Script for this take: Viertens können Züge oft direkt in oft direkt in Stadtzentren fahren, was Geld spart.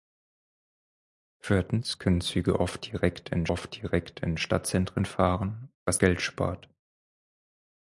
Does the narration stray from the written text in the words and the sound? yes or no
no